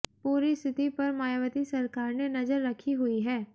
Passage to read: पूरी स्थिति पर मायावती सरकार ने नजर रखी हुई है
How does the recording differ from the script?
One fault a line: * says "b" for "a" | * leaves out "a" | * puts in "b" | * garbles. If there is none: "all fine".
all fine